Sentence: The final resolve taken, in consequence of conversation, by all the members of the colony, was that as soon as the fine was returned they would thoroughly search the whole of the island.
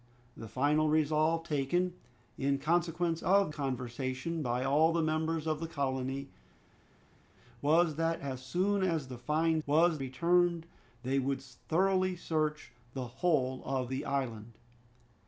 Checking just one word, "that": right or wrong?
right